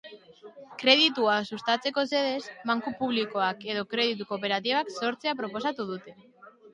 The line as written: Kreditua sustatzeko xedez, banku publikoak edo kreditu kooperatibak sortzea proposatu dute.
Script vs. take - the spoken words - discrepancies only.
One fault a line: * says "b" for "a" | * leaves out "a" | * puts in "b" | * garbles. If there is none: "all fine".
all fine